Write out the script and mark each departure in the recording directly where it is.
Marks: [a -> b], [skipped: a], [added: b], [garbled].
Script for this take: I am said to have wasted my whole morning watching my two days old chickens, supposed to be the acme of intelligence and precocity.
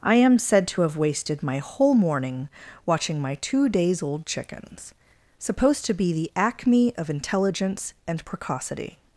I am said to have wasted my whole morning watching my two days old chickens, supposed to be the acme of intelligence and precocity.